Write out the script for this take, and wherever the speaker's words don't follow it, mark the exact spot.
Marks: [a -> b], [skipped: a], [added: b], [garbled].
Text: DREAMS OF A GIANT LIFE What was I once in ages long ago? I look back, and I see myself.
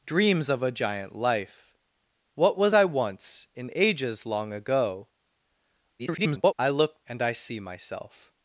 DREAMS OF A GIANT LIFE What was I once in ages long ago? [garbled] I look [skipped: back,] and I see myself.